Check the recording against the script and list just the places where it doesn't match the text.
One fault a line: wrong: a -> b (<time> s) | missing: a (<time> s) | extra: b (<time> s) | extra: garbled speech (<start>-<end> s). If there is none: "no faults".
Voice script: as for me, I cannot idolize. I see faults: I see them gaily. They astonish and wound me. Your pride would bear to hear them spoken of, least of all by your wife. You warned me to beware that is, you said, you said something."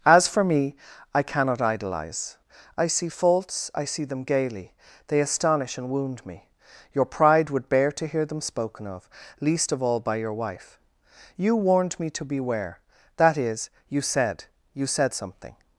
no faults